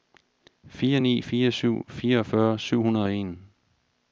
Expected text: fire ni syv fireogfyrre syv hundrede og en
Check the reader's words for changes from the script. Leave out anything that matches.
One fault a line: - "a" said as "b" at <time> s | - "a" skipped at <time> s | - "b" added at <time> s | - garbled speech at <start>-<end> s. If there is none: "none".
- "fire" added at 1.3 s